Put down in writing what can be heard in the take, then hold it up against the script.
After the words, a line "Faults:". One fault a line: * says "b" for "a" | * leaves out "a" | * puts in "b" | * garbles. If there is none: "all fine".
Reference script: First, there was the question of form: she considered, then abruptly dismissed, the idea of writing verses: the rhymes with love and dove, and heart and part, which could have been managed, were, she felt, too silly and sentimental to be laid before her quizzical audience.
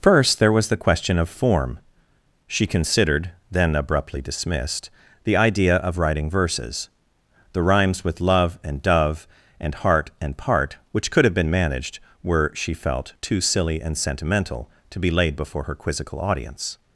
First, there was the question of form: she considered, then abruptly dismissed, the idea of writing verses: the rhymes with love and dove, and heart and part, which could have been managed, were, she felt, too silly and sentimental to be laid before her quizzical audience.
Faults:
all fine